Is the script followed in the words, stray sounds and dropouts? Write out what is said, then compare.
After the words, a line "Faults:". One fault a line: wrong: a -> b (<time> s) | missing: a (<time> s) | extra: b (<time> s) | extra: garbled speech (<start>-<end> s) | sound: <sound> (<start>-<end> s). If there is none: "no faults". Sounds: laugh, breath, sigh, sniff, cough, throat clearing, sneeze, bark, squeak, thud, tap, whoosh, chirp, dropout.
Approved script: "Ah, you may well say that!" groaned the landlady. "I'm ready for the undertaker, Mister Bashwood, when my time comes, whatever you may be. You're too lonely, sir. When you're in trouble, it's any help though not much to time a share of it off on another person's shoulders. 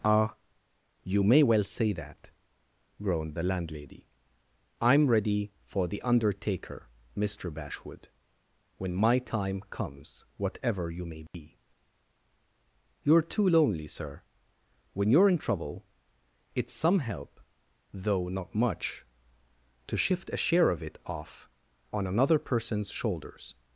"Ah, you may well say that!" groaned the landlady. "I'm ready for the undertaker, Mister Bashwood, when my time comes, whatever you may be. You're too lonely, sir. When you're in trouble, it's some help though not much to shift a share of it off on another person's shoulders.
Faults:
sound: dropout (11.3-11.3 s)
wrong: any -> some (16.7 s)
wrong: time -> shift (20.0 s)